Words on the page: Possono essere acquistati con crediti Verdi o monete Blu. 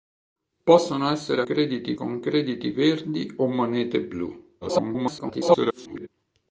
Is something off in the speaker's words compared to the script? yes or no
yes